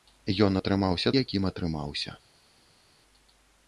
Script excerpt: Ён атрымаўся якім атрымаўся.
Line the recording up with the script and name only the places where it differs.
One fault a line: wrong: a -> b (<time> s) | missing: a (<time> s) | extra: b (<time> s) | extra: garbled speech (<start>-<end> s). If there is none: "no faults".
no faults